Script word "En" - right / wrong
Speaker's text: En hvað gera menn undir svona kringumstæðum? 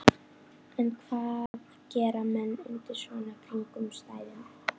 right